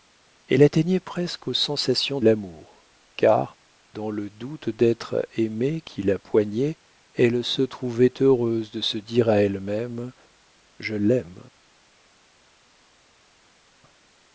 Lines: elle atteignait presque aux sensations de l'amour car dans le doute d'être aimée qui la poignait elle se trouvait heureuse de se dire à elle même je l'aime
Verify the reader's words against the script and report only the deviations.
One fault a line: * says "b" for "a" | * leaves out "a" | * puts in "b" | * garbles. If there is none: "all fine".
* leaves out "de"